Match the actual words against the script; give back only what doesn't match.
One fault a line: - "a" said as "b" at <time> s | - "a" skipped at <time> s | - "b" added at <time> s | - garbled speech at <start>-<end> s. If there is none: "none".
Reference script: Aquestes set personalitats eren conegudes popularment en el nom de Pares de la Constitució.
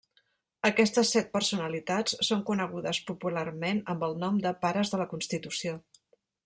- "eren" said as "són" at 2.3 s
- "en" said as "amb" at 3.9 s